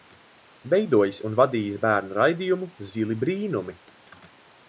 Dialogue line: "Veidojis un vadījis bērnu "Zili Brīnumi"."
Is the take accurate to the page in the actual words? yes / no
no